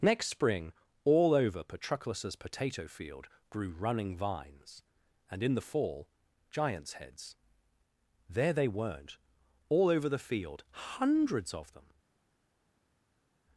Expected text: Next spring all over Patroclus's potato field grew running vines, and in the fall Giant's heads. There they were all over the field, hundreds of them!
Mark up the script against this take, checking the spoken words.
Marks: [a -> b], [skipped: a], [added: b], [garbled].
Next spring all over Patroclus's potato field grew running vines, and in the fall Giant's heads. There they [were -> weren't] all over the field, hundreds of them!